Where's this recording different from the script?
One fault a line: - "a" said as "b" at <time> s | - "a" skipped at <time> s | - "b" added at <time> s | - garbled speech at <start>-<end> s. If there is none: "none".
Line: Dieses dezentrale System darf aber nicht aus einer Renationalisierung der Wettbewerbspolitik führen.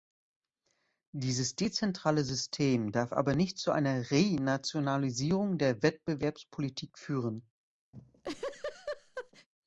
- "aus" said as "zu" at 3.6 s